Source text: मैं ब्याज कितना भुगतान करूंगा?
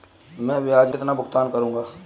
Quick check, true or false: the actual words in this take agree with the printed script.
true